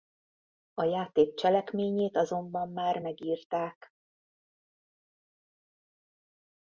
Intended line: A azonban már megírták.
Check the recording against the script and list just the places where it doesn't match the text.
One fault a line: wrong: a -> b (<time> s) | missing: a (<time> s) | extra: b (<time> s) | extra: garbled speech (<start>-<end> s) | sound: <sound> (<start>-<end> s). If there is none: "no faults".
extra: játék cselekményét (0.8 s)